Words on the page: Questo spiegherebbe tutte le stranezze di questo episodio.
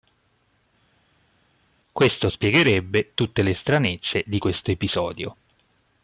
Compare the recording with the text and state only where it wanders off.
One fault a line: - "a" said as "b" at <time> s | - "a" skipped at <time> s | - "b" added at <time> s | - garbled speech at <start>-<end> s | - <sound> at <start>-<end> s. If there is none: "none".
none